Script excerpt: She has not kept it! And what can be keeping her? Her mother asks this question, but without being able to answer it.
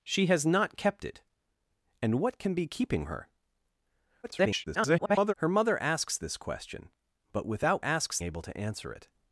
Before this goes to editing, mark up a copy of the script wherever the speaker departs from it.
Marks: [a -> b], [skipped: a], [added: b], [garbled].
She has not kept it! And what can be keeping her? [garbled] Her mother asks this question, but without [being -> asks] able to answer it.